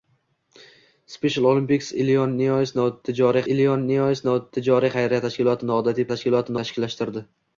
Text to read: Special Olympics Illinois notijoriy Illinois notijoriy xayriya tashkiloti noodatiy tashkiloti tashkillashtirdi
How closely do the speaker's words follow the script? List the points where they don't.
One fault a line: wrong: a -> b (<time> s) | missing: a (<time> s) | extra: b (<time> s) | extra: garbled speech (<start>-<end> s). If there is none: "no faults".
no faults